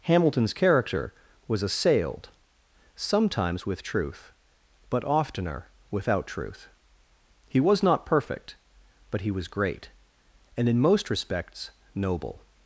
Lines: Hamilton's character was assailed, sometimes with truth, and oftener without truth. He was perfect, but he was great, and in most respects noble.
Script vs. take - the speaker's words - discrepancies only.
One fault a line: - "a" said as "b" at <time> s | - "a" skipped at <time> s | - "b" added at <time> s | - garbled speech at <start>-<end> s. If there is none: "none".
- "and" said as "but" at 4.9 s
- "not" added at 7.8 s